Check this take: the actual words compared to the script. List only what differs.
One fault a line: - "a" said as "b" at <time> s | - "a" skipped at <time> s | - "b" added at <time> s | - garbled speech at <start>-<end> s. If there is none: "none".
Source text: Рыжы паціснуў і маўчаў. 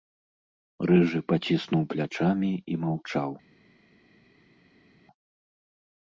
- "плячамі" added at 1.9 s